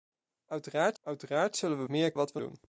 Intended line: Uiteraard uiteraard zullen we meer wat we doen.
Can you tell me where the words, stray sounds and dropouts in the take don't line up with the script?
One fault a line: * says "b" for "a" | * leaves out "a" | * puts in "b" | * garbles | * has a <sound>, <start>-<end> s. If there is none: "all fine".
all fine